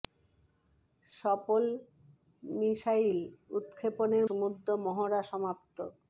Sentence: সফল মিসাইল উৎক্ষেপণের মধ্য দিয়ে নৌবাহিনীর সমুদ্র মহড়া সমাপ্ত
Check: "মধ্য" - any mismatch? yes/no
yes